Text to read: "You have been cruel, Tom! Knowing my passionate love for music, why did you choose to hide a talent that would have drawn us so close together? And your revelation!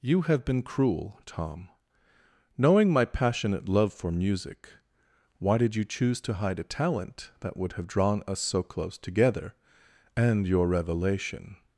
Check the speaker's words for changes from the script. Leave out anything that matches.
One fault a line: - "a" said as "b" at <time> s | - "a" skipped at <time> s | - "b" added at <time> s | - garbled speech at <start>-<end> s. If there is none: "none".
none